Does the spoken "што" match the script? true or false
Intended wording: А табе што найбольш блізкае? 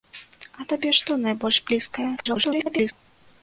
true